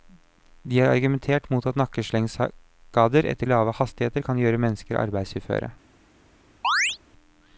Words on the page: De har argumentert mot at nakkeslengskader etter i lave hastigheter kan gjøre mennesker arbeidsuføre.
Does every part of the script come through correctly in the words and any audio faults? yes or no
no